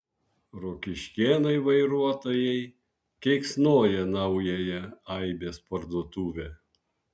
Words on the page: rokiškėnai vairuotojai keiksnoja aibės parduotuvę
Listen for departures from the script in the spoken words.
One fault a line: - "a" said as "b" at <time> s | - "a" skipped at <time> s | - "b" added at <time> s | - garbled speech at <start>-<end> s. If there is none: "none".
- "naująją" added at 4.2 s